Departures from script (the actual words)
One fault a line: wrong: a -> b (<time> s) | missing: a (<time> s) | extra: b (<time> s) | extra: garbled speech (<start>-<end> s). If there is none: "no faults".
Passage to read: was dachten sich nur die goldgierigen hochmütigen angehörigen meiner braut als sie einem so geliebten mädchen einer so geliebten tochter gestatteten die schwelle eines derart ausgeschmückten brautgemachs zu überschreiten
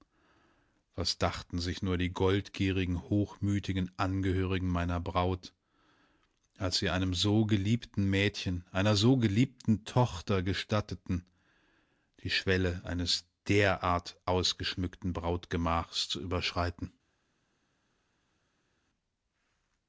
no faults